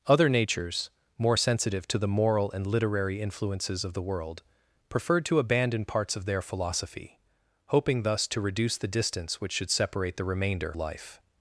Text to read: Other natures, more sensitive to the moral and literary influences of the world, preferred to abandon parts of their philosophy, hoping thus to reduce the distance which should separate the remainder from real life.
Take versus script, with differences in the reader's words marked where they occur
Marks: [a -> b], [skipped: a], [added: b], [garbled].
Other natures, more sensitive to the moral and literary influences of the world, preferred to abandon parts of their philosophy, hoping thus to reduce the distance which should separate the remainder [skipped: from real] life.